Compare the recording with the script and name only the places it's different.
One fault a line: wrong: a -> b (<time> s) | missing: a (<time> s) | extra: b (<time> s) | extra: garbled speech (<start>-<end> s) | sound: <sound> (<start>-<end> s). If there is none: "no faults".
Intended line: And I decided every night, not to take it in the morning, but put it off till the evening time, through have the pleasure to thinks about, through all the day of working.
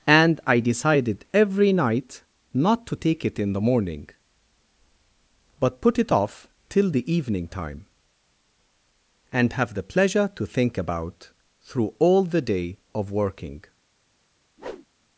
wrong: through -> and (9.3 s)
wrong: thinks -> think (10.5 s)
sound: whoosh (14.6-14.9 s)